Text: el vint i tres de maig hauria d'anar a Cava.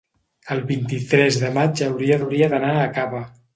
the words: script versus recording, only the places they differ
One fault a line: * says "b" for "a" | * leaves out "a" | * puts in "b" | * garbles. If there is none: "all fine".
* puts in "hauria"